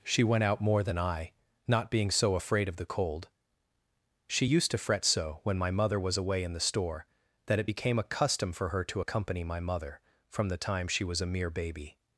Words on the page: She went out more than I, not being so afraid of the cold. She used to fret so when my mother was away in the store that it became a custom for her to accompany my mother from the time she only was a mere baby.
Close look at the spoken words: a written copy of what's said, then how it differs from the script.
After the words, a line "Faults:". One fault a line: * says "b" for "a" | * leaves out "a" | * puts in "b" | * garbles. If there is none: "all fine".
She went out more than I, not being so afraid of the cold. She used to fret so when my mother was away in the store that it became a custom for her to accompany my mother from the time she was a mere baby.
Faults:
* leaves out "only"